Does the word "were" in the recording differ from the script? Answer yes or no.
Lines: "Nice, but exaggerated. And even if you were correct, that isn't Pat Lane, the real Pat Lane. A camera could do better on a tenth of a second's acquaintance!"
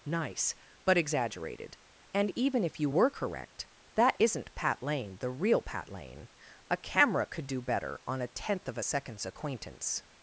no